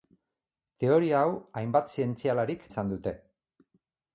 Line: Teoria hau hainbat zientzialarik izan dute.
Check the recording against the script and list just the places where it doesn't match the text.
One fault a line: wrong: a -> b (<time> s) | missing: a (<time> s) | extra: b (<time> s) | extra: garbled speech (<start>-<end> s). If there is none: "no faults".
no faults